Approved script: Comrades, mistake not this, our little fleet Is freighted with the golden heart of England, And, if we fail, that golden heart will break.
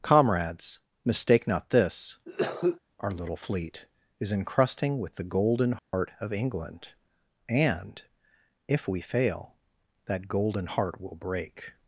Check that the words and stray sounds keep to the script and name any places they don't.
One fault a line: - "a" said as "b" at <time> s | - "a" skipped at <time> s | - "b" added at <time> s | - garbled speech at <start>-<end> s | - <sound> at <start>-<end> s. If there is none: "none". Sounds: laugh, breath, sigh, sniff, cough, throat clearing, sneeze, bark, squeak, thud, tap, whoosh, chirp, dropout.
- cough at 2.3-2.8 s
- "freighted" said as "encrusting" at 4.3 s
- dropout at 5.8-5.9 s